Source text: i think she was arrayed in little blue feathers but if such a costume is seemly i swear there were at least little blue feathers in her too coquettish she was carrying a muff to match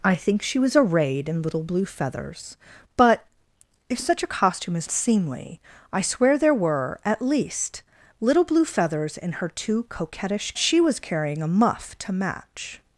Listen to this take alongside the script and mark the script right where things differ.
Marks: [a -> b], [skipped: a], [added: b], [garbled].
i think she was arrayed in little blue feathers but if such a costume is seemly i swear there were at least little blue feathers in her too coquettish she was carrying a muff to match